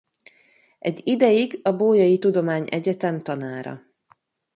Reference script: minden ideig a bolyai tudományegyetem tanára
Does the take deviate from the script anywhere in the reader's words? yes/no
yes